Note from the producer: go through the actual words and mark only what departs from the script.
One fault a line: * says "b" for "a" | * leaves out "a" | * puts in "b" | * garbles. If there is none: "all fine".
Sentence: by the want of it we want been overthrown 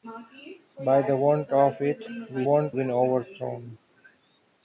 all fine